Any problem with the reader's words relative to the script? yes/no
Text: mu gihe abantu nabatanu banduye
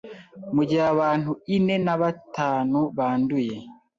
yes